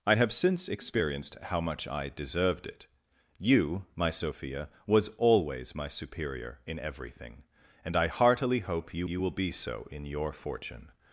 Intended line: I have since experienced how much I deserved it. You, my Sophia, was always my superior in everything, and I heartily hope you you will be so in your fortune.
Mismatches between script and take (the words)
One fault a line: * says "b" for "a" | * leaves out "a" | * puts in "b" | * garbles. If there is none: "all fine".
all fine